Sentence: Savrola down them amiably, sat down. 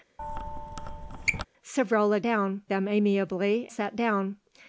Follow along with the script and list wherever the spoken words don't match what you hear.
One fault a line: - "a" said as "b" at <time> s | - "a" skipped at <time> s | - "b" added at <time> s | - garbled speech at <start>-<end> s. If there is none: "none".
none